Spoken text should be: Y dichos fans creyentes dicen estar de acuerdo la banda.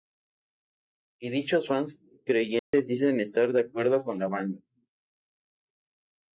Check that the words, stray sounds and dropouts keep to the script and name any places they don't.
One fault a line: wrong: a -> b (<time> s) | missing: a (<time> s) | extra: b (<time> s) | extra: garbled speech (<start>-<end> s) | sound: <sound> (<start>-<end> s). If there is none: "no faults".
sound: dropout (2.6-2.7 s)
extra: con (4.0 s)